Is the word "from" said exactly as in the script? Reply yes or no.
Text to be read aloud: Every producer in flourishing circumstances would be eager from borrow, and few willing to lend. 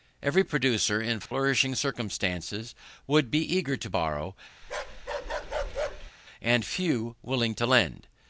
no